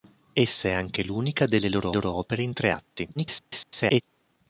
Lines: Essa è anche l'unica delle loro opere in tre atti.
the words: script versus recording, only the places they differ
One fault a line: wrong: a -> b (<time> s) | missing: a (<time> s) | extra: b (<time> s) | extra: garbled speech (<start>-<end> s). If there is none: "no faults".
extra: loro (1.9 s)
extra: garbled speech (3.1-4.0 s)